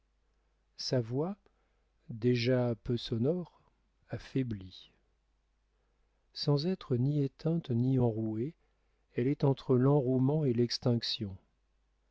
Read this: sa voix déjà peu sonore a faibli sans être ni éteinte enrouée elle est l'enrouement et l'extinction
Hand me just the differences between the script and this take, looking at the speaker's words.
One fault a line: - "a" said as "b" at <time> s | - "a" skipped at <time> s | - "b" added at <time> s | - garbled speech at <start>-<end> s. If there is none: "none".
- "ni" added at 7.7 s
- "entre" added at 9.4 s